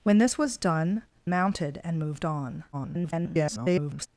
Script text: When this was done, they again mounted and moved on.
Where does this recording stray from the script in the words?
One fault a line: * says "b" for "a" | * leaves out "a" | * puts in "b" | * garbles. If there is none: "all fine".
* leaves out "they again"
* garbles